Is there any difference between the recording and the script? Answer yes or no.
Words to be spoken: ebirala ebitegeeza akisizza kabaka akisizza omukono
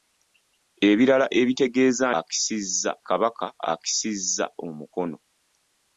no